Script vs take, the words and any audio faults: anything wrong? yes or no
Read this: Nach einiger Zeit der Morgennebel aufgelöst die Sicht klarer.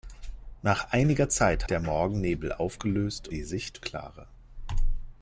no